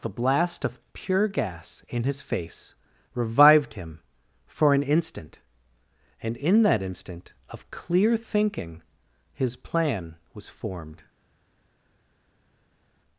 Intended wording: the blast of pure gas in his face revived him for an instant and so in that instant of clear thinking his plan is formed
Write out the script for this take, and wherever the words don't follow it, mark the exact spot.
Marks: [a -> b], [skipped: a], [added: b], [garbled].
the blast of pure gas in his face revived him for an instant and [skipped: so] in that instant of clear thinking his plan [is -> was] formed